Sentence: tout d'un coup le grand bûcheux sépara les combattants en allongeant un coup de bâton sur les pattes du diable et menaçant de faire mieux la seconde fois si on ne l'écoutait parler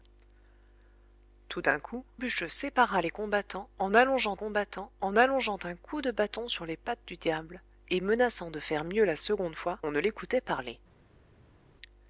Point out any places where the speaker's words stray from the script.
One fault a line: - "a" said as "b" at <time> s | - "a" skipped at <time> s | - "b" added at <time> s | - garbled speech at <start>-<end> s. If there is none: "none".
- "le grand" skipped at 2.0 s
- "combattants en allongeant" added at 4.3 s
- "si" skipped at 9.8 s